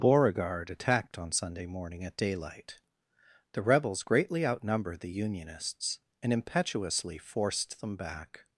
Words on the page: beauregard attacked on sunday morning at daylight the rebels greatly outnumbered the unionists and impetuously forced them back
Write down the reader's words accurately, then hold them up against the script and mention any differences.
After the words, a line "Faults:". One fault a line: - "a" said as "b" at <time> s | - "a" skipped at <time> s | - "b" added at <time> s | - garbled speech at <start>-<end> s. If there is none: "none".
beauregard attacked on sunday morning at daylight the rebels greatly outnumbered the unionists and impetuously forced them back
Faults:
none